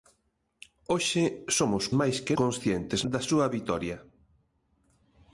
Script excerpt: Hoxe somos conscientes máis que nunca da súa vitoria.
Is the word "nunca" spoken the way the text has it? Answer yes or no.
no